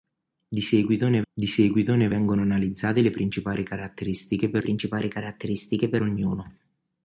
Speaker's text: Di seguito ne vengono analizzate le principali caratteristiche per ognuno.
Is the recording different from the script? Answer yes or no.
yes